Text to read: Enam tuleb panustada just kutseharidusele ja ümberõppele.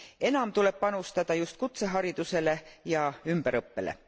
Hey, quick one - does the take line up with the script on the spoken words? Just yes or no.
yes